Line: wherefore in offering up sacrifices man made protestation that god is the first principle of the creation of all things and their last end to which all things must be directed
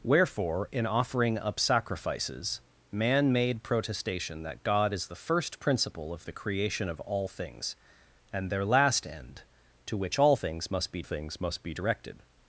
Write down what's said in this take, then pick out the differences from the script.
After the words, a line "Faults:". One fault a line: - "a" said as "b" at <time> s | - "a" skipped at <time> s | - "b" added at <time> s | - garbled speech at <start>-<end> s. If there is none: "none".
wherefore in offering up sacrifices man made protestation that god is the first principle of the creation of all things and their last end to which all things must be things must be directed
Faults:
- "things must be" added at 11.0 s